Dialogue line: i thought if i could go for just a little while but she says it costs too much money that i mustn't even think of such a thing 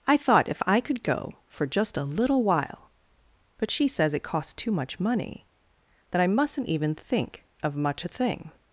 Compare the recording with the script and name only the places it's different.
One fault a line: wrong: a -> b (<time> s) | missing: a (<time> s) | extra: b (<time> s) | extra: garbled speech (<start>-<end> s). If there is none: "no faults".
wrong: such -> much (7.7 s)